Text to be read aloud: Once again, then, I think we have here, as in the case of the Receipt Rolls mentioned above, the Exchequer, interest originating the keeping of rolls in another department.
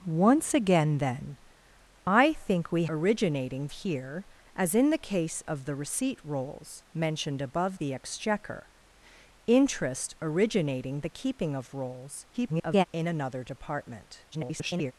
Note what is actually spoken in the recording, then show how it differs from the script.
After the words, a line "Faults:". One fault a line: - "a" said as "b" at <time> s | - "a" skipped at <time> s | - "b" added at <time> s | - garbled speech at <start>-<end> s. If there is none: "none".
Once again, then, I think we originating here, as in the case of the Receipt Rolls mentioned above, the Exchequer, interest originating the keeping of rolls [garbled] in another department. [garbled]
Faults:
- "have" said as "originating" at 2.9 s
- garbled speech at 12.3-12.8 s
- garbled speech at 14.3-14.9 s